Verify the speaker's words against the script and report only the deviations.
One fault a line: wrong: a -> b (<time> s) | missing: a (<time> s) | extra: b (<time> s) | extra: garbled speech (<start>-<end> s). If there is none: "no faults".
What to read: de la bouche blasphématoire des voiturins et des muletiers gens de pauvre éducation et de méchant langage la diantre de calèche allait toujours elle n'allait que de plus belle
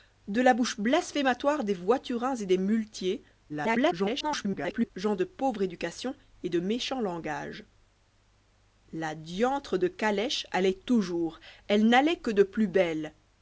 extra: garbled speech (3.5-4.9 s)